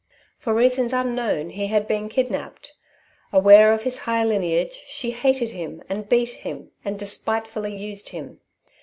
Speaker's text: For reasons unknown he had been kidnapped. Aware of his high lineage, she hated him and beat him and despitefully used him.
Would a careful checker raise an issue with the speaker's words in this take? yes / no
no